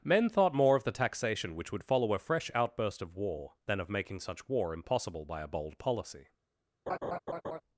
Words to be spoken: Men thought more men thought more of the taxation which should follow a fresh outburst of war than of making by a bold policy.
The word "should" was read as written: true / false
false